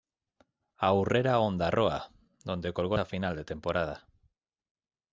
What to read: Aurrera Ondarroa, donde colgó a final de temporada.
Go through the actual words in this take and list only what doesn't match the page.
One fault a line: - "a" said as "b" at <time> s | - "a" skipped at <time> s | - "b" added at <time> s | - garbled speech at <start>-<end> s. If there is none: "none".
none